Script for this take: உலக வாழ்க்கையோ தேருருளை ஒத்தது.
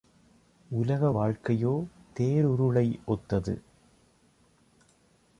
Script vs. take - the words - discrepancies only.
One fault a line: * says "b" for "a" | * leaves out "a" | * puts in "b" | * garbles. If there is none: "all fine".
all fine